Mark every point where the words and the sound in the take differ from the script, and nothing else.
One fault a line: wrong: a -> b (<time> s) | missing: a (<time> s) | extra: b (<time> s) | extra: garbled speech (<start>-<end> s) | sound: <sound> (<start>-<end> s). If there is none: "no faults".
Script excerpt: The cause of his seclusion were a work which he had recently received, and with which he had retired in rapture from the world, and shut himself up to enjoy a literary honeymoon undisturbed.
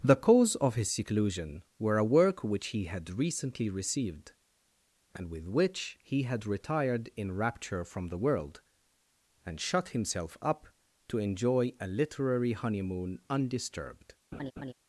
sound: laugh (14.3-14.7 s)